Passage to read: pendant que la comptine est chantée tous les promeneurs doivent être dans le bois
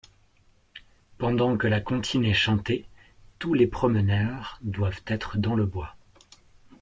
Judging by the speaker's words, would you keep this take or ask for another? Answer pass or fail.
pass